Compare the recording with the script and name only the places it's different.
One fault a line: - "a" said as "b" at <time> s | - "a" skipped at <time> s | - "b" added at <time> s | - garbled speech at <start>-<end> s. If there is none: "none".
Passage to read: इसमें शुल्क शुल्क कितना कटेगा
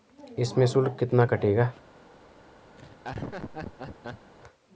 - "शुल्क" skipped at 0.9 s